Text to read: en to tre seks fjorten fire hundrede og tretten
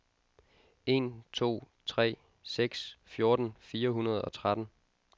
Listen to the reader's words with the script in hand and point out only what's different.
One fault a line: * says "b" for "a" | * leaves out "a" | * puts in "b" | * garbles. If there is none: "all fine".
all fine